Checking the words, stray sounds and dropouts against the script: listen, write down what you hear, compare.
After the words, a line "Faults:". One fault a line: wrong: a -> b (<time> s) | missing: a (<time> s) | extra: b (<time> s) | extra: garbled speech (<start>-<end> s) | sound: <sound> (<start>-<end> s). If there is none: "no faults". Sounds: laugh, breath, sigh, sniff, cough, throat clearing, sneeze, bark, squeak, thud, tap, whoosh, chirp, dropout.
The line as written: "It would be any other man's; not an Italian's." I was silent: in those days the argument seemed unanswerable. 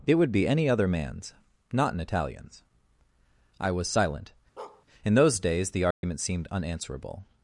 "It would be any other man's; not an Italian's." I was silent: in those days the argument seemed unanswerable.
Faults:
sound: bark (4.6-4.9 s)
sound: dropout (5.9-6.0 s)